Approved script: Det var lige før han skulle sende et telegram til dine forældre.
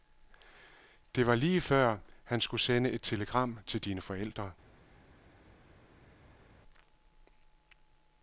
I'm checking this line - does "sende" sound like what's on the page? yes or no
yes